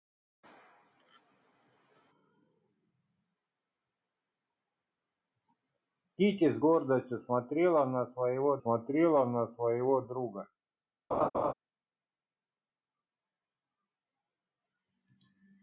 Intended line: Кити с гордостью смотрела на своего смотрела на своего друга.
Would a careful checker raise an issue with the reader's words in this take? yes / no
no